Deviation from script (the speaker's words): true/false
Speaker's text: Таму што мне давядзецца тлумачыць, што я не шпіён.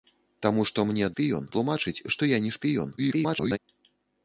true